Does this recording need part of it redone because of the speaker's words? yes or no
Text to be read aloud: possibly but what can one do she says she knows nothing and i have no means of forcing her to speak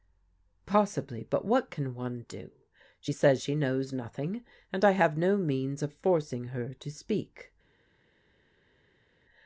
no